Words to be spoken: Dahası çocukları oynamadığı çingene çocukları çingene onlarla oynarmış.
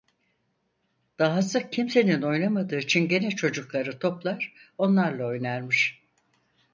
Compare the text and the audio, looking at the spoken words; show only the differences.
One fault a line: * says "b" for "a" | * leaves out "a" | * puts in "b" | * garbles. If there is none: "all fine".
* says "kimsenin" for "çocukları"
* says "toplar" for "çingene"